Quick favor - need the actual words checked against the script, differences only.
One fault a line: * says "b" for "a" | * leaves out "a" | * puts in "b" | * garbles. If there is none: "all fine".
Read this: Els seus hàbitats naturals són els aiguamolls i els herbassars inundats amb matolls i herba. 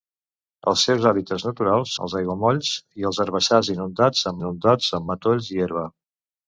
* leaves out "són"
* puts in "inundats amb"